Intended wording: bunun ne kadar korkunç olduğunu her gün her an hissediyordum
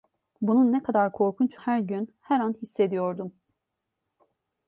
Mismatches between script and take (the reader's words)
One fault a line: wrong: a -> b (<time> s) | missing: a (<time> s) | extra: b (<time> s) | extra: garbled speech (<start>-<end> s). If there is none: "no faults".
missing: olduğunu (1.6 s)